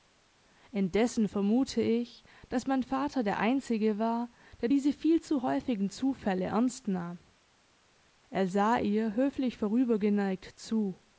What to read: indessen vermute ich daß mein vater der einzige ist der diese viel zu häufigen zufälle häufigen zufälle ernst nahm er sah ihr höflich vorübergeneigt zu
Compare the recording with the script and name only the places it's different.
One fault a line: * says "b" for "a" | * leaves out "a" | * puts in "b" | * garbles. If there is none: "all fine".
* says "war" for "ist"
* leaves out "häufigen zufälle"